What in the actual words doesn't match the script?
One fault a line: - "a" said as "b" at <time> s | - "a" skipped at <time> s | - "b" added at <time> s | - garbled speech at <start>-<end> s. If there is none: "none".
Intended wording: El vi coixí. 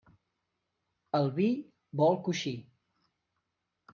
- "vol" added at 2.0 s